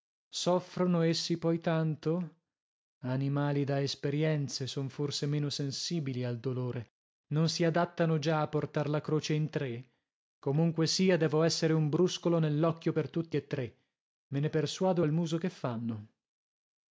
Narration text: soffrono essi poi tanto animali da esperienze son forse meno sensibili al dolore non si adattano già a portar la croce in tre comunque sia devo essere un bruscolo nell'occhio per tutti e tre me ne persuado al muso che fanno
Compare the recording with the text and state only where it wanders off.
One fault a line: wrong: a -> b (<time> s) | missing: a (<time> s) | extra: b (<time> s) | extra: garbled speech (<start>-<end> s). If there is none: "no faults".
no faults